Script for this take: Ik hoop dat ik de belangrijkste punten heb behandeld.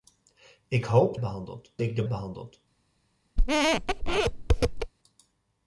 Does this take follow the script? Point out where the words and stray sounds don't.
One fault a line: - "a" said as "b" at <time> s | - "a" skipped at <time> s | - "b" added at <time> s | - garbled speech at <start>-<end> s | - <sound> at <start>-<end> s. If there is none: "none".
- "dat" said as "behandeld" at 1.2 s
- "belangrijkste punten heb" skipped at 2.0 s
- squeak at 3.4-4.9 s